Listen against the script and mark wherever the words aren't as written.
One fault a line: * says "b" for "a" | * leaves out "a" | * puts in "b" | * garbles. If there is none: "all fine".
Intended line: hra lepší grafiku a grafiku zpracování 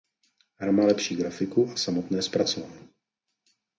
* puts in "má"
* says "samotné" for "grafiku"